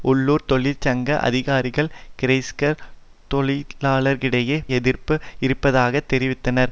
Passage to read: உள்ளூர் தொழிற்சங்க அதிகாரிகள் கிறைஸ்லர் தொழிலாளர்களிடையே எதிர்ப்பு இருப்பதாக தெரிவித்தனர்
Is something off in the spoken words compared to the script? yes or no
no